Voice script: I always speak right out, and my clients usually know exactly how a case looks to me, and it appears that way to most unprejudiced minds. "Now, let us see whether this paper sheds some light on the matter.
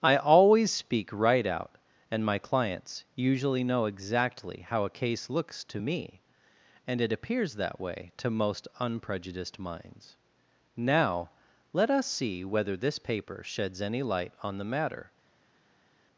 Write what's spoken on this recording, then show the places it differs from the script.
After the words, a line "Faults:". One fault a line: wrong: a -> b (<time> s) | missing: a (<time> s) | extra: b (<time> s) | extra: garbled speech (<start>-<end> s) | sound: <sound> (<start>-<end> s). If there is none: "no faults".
I always speak right out, and my clients usually know exactly how a case looks to me, and it appears that way to most unprejudiced minds. "Now, let us see whether this paper sheds any light on the matter.
Faults:
wrong: some -> any (13.8 s)